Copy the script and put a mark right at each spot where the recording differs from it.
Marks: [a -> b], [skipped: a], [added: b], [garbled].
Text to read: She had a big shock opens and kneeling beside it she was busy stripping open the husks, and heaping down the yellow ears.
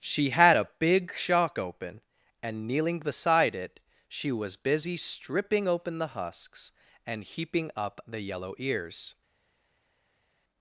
She had a big shock [opens -> open] and kneeling beside it she was busy stripping open the husks, and heaping [down -> up] the yellow ears.